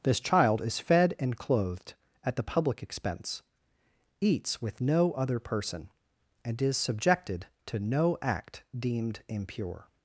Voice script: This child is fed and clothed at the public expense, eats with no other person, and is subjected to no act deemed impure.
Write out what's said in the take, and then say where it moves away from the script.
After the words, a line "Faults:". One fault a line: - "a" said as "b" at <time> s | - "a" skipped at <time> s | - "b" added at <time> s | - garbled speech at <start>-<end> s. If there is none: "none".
This child is fed and clothed at the public expense, eats with no other person, and is subjected to no act deemed impure.
Faults:
none